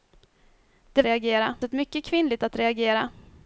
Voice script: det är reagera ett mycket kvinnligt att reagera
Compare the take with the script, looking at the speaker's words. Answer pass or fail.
pass